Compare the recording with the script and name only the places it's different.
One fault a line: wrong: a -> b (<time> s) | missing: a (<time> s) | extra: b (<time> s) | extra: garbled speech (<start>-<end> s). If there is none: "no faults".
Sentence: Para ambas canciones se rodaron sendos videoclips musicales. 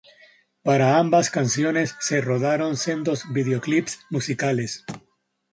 no faults